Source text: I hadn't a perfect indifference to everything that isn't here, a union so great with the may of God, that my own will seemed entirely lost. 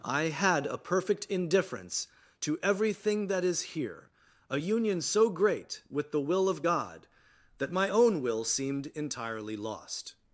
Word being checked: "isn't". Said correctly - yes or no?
no